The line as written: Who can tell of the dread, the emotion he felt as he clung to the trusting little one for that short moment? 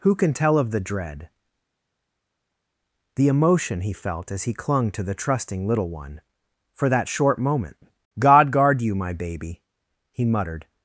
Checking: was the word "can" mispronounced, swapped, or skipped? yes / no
no